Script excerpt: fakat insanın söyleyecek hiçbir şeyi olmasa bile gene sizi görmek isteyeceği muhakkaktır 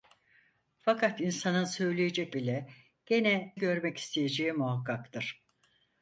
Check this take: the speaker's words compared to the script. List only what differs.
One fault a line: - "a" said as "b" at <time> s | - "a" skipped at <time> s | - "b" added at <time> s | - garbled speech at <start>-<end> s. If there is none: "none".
- "hiçbir şeyi olmasa" skipped at 2.4 s
- "sizi" skipped at 3.5 s